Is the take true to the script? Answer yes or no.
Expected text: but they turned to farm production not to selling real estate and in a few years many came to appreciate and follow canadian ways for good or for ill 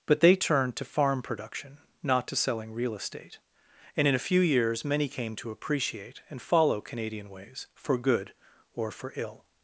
yes